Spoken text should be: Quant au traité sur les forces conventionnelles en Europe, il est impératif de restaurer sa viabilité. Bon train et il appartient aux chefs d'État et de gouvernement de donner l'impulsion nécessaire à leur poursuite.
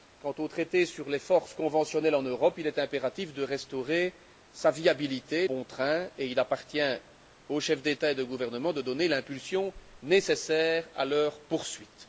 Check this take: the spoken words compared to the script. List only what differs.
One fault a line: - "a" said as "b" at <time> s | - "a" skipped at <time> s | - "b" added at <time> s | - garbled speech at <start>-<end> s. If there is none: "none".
none